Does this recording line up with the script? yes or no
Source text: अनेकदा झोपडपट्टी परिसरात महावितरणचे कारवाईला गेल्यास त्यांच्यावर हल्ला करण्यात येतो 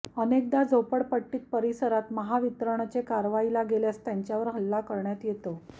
yes